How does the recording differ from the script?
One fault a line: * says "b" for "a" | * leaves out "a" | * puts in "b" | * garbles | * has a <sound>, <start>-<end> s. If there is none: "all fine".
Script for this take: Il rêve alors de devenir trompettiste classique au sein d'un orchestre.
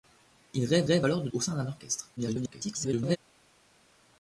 * puts in "rêve"
* leaves out "devenir trompettiste classique"
* garbles